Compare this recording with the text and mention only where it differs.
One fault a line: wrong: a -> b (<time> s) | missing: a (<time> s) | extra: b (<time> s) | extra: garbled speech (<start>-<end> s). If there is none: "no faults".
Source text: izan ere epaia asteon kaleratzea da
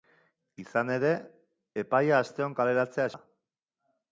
no faults